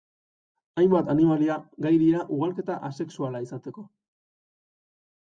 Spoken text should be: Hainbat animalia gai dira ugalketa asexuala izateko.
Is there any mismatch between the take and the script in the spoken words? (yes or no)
no